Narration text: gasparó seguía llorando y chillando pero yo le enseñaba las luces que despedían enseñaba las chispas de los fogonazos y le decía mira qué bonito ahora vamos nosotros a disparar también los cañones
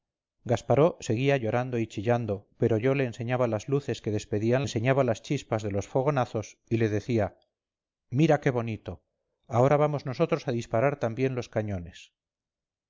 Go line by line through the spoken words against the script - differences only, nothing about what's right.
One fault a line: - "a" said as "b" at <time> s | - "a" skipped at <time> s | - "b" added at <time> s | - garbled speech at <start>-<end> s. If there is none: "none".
none